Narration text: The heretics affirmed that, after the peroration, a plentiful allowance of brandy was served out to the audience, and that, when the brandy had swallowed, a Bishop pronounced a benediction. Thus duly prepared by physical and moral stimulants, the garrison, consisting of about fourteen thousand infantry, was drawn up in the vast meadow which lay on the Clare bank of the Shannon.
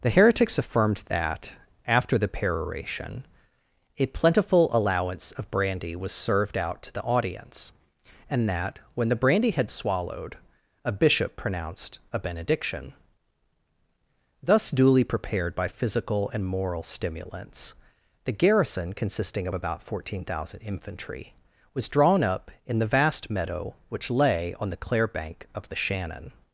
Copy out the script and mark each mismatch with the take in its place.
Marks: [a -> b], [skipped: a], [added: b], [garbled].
The heretics affirmed that, after the peroration, a plentiful allowance of brandy was served out to the audience, and that, when the brandy had swallowed, a Bishop pronounced a benediction. Thus duly prepared by physical and moral stimulants, the garrison, consisting of about fourteen thousand infantry, was drawn up in the vast meadow which lay on the Clare bank of the Shannon.